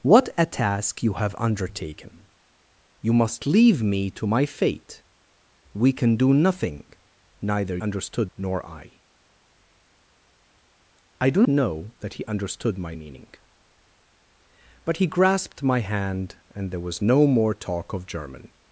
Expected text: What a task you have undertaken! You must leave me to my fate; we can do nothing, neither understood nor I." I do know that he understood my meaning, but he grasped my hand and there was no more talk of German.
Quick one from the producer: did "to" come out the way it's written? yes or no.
yes